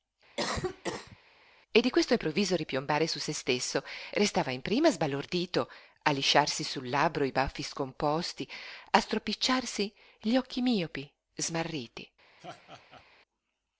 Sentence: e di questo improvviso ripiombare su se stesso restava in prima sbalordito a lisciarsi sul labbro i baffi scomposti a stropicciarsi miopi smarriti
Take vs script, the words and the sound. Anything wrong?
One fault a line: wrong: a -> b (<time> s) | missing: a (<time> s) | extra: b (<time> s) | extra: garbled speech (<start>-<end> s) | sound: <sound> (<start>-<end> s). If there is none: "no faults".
sound: cough (0.4-1.2 s)
extra: gli occhi (10.2 s)
sound: laugh (12.4-13.1 s)